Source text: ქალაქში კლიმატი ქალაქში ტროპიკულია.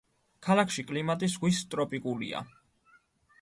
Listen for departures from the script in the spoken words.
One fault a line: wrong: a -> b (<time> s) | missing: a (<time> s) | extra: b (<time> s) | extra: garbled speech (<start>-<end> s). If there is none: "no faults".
wrong: ქალაქში -> ზღვის (1.3 s)